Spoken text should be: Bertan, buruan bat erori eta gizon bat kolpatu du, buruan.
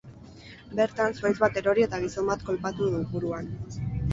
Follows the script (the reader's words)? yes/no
no